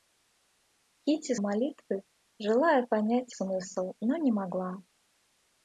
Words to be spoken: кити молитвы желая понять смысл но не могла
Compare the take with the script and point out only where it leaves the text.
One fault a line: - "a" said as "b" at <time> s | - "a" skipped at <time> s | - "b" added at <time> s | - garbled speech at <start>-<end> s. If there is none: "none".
none